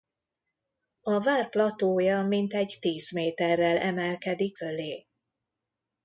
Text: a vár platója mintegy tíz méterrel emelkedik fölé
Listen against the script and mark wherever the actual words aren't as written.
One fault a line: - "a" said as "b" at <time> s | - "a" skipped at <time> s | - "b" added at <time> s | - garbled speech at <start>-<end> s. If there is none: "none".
none